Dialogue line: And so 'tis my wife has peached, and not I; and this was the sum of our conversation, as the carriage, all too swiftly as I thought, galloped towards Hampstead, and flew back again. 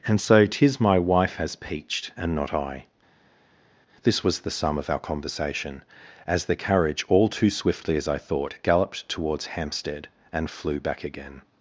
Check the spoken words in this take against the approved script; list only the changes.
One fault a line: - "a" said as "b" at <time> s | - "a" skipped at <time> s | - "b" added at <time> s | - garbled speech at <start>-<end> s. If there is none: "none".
- "and" skipped at 2.9 s